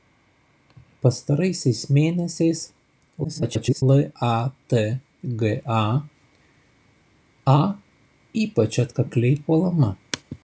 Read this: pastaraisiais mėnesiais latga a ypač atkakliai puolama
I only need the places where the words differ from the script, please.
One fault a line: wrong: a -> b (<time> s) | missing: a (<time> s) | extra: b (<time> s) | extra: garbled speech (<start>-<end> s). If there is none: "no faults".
extra: garbled speech (3.2-3.8 s)